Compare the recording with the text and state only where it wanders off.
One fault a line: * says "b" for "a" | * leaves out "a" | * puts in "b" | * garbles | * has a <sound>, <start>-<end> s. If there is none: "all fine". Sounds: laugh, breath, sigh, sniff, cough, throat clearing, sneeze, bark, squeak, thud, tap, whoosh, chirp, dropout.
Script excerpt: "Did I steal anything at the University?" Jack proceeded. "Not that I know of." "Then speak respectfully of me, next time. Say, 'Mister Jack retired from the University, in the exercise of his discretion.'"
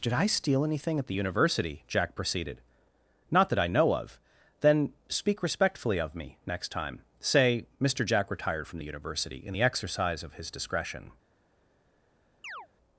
* has a chirp, 12.4-12.7 s